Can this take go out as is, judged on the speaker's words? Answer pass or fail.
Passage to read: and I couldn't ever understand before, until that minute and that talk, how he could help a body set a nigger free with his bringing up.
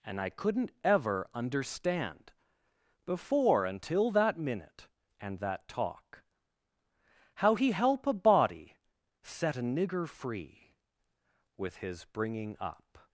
fail